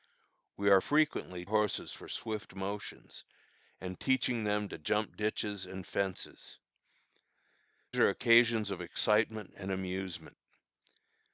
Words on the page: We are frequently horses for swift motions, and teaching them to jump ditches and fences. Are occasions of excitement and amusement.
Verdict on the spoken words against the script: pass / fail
pass